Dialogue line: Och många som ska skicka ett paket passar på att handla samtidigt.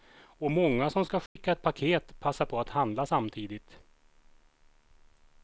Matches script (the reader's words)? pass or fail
pass